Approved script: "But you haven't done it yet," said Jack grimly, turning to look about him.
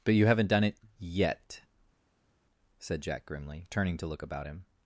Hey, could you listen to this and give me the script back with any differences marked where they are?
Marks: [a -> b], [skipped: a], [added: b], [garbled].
"But you haven't done it yet," said Jack grimly, turning to look about him.